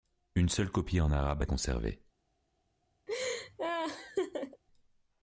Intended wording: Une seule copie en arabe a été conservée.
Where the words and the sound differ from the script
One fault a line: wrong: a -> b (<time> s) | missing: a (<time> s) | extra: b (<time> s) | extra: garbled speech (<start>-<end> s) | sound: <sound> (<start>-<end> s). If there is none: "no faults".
missing: été (1.4 s)
sound: laugh (3.1-4.6 s)